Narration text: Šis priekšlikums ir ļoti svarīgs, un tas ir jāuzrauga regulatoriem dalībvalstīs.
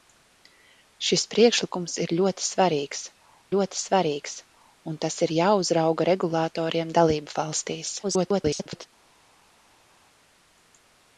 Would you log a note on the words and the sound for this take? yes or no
yes